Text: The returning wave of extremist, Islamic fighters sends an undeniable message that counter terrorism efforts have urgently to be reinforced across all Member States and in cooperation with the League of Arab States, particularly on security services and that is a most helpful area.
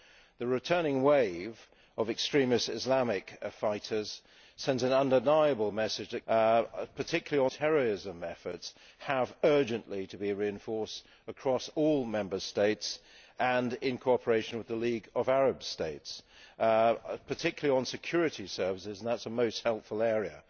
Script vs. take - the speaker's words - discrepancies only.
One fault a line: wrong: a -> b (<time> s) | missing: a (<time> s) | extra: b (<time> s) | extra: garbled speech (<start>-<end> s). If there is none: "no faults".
wrong: counter -> particularly (6.3 s)